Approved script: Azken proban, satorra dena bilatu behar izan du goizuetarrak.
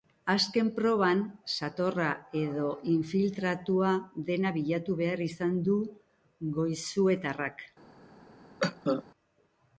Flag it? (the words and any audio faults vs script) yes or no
yes